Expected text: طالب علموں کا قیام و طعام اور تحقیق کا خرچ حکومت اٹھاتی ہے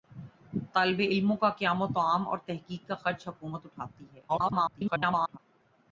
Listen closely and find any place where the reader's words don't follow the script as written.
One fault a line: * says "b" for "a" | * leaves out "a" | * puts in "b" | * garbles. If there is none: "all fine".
* garbles